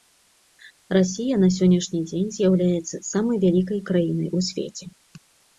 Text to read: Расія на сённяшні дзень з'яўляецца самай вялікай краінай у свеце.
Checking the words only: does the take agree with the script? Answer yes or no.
yes